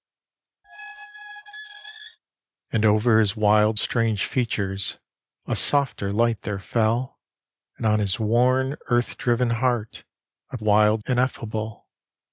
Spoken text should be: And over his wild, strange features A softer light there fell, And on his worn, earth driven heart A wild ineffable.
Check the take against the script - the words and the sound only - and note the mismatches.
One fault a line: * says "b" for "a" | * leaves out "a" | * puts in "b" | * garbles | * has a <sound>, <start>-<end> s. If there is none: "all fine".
* has a squeak, 0.6-2.2 s